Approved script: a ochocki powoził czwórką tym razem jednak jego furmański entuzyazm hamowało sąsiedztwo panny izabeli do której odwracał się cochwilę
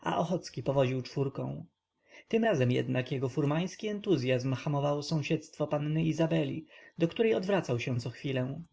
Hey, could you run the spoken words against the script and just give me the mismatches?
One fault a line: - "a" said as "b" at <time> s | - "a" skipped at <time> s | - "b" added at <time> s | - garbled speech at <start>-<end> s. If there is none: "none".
none